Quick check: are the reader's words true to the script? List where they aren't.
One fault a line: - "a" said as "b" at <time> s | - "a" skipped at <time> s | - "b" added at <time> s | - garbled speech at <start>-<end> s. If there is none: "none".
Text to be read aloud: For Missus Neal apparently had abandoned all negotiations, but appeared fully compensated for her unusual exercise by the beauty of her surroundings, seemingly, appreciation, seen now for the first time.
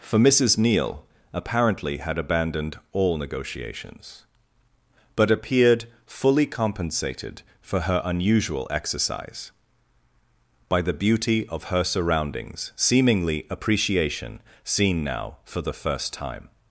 none